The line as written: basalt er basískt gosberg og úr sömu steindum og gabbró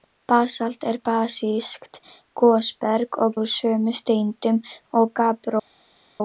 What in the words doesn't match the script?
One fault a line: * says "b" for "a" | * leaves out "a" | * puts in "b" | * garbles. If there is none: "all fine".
all fine